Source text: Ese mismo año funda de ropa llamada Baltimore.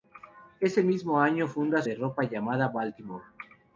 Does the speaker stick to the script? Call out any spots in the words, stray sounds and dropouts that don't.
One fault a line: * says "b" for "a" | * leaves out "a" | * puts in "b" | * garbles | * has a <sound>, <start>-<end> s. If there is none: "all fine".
all fine